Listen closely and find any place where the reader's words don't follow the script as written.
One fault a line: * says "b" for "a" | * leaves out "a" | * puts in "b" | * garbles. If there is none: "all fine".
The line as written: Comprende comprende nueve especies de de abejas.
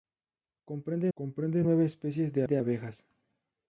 all fine